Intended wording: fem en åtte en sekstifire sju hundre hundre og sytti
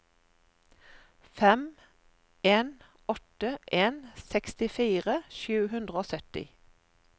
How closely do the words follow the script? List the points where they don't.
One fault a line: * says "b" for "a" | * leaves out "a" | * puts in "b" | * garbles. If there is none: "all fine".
* leaves out "hundre"